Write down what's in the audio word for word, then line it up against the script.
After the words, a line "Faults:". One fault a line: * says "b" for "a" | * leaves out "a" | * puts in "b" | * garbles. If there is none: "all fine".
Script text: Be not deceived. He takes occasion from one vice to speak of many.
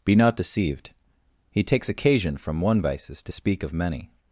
Be not deceived. He takes occasion from one vices to speak of many.
Faults:
* says "vices" for "vice"